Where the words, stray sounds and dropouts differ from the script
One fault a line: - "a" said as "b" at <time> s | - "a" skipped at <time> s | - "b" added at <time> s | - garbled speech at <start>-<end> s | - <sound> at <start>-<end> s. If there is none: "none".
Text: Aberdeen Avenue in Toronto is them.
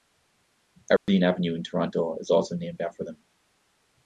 - dropout at 1.0-1.1 s
- "also named after" added at 2.3 s